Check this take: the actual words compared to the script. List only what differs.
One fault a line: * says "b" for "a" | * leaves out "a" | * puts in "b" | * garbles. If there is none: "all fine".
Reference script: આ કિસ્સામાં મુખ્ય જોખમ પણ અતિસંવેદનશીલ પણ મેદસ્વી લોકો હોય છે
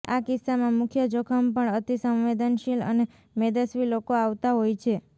* says "અને" for "પણ"
* puts in "આવતા"